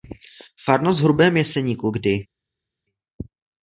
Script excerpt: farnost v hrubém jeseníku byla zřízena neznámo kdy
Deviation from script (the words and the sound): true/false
true